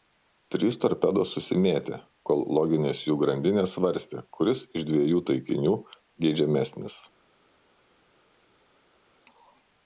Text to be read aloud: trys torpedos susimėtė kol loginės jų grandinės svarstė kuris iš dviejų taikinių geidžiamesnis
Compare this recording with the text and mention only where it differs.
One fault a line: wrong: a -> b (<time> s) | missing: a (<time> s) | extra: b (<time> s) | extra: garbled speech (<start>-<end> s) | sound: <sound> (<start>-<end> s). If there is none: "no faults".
no faults